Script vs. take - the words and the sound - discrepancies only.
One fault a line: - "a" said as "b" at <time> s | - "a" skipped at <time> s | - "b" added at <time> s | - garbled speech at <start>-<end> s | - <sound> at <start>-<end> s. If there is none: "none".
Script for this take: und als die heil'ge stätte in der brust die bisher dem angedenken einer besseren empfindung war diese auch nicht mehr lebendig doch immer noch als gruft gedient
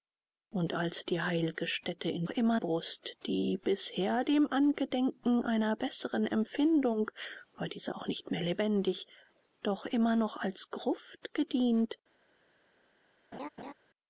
- "der" said as "immer" at 2.3 s
- laugh at 13.3-13.7 s